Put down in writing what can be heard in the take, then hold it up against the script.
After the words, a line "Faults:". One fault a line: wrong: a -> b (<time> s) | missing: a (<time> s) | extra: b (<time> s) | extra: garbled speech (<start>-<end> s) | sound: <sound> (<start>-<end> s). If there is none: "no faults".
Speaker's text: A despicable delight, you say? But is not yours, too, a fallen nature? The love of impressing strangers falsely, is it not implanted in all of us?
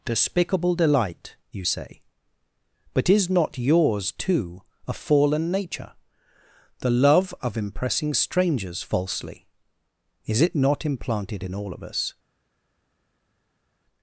despicable delight, you say? But is not yours, too, a fallen nature? The love of impressing strangers falsely, is it not implanted in all of us?
Faults:
missing: A (0.1 s)